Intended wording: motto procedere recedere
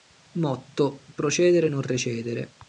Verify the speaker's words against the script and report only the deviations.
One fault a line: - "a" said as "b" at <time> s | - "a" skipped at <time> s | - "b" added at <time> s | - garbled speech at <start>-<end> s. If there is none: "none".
- "non" added at 1.7 s